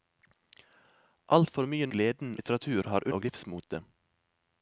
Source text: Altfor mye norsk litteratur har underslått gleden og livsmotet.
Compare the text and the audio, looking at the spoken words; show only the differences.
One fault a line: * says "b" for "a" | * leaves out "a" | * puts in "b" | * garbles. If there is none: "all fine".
* says "gleden" for "norsk"
* leaves out "underslått gleden"